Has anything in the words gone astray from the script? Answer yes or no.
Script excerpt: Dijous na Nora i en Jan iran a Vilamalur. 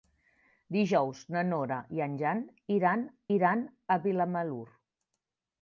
yes